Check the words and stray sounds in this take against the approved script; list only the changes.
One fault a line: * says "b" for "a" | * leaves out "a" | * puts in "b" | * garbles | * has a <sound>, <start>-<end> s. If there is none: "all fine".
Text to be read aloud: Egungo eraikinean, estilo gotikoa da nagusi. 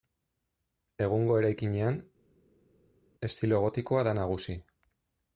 all fine